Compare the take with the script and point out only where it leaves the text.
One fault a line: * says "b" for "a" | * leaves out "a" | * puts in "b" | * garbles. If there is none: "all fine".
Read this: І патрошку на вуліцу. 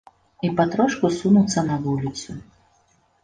* puts in "сунуцца"